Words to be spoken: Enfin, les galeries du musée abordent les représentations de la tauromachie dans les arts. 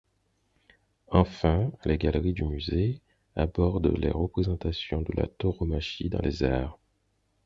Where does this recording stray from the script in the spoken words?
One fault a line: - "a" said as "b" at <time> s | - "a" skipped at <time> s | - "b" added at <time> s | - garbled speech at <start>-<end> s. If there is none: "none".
none